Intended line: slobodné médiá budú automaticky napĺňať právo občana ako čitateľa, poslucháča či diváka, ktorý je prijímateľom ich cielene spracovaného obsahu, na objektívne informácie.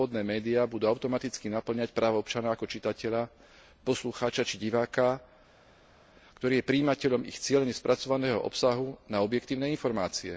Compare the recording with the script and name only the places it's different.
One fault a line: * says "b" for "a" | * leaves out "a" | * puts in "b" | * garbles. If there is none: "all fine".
all fine